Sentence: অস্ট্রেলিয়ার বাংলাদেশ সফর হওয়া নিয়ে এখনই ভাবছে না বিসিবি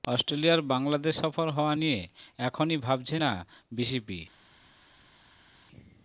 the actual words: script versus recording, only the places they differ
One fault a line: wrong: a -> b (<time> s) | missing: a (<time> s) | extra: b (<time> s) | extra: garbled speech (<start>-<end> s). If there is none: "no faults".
no faults